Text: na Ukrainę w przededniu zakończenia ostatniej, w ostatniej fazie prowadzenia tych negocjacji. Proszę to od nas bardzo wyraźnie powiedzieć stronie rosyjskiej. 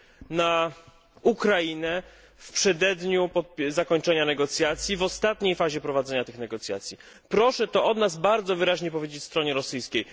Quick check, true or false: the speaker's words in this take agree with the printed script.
false